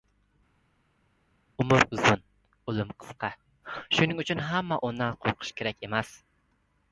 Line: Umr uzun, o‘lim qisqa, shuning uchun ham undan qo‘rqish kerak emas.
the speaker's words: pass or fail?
pass